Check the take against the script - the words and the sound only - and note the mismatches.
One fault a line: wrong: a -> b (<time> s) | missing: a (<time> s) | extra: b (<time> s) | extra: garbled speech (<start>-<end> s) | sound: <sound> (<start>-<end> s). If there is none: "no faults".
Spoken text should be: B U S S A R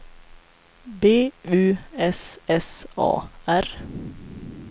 no faults